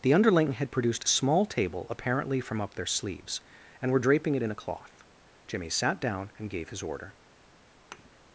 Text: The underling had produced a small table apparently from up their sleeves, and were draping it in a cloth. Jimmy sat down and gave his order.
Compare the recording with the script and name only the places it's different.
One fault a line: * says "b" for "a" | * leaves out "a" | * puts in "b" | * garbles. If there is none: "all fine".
all fine